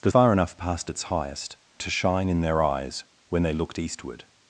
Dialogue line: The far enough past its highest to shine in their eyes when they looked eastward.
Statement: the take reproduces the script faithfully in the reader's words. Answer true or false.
true